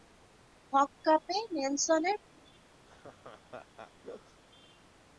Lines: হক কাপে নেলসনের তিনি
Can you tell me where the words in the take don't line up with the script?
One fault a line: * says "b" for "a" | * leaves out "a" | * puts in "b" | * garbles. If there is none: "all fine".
all fine